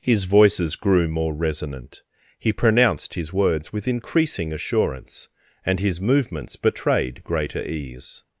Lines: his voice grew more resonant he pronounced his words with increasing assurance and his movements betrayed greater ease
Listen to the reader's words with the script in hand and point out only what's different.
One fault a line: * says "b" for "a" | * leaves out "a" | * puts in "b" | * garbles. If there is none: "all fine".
* says "voices" for "voice"